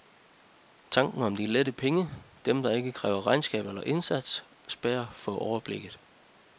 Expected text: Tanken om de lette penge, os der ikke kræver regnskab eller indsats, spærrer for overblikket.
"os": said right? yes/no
no